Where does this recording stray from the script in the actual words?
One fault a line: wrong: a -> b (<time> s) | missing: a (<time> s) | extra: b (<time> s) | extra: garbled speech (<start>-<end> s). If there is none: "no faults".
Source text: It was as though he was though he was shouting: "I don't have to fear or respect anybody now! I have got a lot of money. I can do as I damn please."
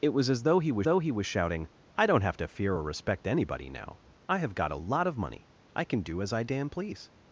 no faults